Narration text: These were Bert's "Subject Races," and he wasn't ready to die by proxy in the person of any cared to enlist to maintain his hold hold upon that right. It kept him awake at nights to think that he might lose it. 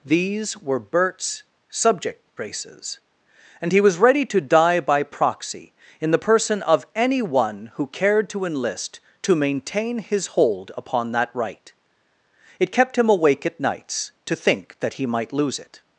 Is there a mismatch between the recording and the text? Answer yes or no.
yes